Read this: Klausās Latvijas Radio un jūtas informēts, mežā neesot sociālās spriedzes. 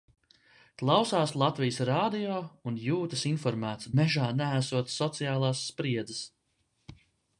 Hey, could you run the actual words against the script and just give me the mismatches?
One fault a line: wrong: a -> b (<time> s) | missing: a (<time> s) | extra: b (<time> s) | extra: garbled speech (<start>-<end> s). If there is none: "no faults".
no faults